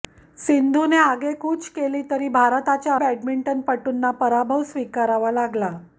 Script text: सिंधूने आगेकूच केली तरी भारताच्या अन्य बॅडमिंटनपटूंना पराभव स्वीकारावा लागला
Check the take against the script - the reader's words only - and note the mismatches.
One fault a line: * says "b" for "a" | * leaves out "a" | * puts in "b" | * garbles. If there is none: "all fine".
* leaves out "अन्य"